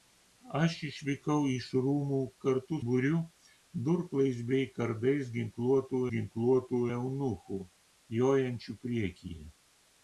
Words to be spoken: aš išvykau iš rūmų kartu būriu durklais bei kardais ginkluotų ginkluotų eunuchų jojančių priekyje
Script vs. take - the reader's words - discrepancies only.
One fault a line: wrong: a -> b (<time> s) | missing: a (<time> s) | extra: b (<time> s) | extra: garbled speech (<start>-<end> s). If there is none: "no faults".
no faults